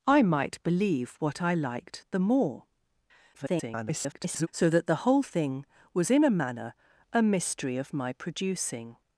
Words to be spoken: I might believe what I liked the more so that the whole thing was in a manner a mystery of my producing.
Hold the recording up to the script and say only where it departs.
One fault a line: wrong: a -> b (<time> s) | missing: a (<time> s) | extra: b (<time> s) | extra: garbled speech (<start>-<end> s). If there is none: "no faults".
extra: garbled speech (3.3-4.5 s)